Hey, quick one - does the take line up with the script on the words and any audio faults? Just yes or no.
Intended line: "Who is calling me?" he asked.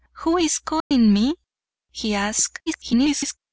no